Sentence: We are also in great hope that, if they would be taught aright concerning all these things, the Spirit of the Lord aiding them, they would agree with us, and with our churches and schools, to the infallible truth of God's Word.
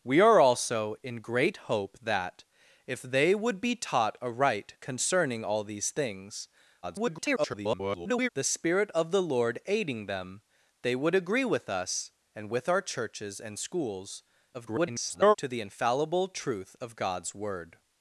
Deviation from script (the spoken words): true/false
true